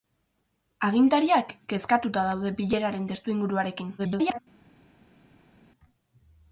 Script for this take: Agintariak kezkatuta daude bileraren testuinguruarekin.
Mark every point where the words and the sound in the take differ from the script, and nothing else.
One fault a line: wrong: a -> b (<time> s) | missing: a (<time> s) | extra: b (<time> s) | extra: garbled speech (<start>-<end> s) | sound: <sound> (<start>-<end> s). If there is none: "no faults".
extra: garbled speech (4.0-4.4 s)